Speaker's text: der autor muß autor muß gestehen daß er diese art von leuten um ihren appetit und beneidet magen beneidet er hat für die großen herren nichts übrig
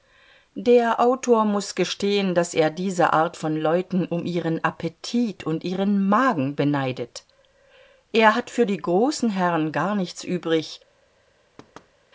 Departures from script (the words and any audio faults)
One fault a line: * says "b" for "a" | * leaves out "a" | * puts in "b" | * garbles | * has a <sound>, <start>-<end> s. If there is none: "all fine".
* leaves out "autor muß"
* says "ihren" for "beneidet"
* puts in "gar"
* has a thud, 11.6-11.9 s